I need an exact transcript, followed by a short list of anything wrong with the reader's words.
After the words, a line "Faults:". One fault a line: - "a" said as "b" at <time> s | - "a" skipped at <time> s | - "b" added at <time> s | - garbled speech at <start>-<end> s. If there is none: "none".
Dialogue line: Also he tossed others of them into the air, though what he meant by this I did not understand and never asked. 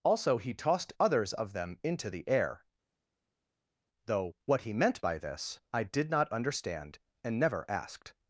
Also he tossed others of them into the air, though what he meant by this I did not understand and never asked.
Faults:
none